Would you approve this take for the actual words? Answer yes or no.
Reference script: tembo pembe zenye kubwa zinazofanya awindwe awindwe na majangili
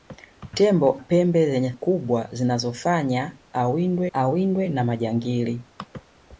yes